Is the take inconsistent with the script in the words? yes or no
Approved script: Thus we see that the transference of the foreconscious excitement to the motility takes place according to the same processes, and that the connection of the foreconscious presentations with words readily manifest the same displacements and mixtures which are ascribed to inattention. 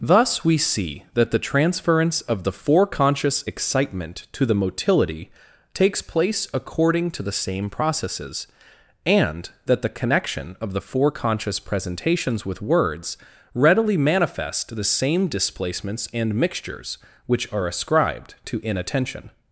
no